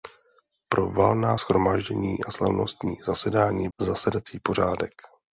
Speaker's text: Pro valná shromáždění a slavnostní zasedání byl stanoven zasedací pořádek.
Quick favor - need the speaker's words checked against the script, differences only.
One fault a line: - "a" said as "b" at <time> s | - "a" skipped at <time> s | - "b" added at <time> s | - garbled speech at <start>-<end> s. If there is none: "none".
- "byl stanoven" skipped at 3.7 s